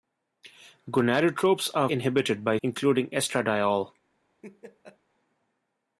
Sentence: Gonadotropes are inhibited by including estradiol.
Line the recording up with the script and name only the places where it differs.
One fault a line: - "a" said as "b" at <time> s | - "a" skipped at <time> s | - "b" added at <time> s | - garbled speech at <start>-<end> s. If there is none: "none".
none